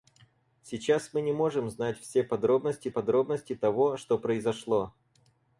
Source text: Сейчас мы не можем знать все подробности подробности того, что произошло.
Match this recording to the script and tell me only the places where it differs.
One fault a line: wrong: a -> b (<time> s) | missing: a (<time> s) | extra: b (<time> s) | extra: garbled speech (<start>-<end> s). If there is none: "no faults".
no faults